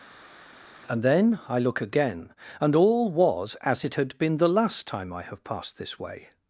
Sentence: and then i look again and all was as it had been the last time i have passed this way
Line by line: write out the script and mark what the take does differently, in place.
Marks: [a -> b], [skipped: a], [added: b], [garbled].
and then i look again and all was as it had been the last time i have passed this way